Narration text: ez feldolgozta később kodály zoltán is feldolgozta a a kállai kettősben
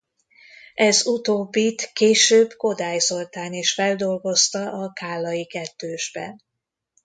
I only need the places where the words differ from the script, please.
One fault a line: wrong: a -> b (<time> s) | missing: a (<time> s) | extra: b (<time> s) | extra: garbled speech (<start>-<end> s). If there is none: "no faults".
wrong: feldolgozta -> utóbbit (1.1 s)
missing: a (4.9 s)